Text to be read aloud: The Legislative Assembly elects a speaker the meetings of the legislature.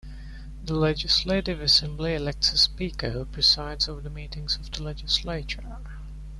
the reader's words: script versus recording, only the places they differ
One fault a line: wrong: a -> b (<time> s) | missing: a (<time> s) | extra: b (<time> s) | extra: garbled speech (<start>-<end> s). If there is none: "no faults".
extra: who presides over (3.1 s)